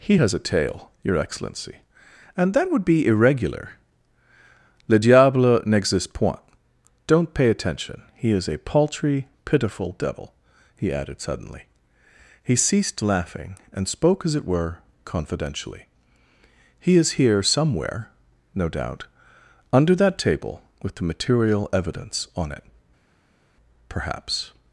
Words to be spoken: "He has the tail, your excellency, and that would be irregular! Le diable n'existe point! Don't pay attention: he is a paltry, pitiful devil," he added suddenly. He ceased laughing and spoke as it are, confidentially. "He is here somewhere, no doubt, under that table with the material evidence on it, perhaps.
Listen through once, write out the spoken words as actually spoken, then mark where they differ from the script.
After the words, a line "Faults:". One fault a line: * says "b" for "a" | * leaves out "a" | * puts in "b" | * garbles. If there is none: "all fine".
"He has a tail, your excellency, and that would be irregular! Le diable n'existe point! Don't pay attention: he is a paltry, pitiful devil," he added suddenly. He ceased laughing and spoke as it were, confidentially. "He is here somewhere, no doubt, under that table with the material evidence on it, perhaps.
Faults:
* says "a" for "the"
* says "were" for "are"